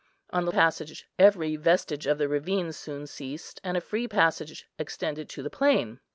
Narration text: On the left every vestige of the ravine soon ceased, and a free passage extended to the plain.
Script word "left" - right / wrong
wrong